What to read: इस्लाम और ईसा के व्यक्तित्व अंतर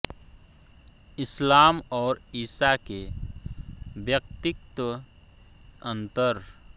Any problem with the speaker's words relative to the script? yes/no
no